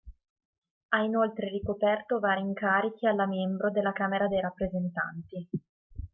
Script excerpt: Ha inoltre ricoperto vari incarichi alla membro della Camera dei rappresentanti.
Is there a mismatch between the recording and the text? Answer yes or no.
no